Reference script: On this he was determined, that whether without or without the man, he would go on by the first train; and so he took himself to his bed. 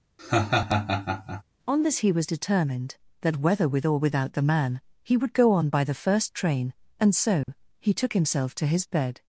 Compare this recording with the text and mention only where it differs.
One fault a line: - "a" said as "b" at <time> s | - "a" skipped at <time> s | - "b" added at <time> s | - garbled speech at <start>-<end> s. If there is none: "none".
- "without" said as "with" at 3.7 s